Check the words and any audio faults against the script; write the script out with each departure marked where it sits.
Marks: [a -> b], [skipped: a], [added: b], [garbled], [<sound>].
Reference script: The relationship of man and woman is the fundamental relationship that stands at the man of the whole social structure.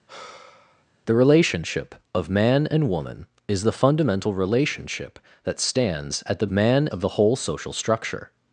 [sigh] The relationship of man and woman is the fundamental relationship that stands at the man of the whole social structure.